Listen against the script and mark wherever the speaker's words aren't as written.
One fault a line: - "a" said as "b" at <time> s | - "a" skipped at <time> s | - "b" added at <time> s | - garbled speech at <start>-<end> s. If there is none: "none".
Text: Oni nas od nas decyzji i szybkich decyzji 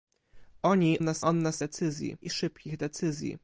none